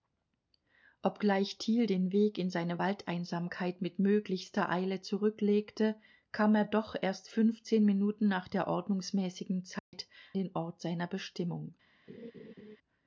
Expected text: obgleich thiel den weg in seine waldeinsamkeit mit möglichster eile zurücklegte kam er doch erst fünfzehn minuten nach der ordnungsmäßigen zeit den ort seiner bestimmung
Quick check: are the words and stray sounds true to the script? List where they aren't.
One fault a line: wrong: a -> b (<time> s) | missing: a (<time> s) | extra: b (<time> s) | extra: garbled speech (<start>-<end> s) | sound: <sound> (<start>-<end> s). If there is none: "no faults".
sound: dropout (9.8-9.9 s)
sound: laugh (12.1-12.8 s)